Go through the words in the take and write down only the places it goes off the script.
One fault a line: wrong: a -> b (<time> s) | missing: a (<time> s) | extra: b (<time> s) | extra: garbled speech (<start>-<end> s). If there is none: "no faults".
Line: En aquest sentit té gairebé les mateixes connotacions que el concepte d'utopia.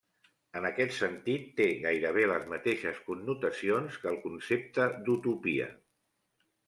no faults